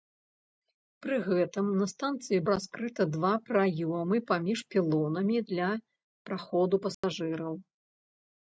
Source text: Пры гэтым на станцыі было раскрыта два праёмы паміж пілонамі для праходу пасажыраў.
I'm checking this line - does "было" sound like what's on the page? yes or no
no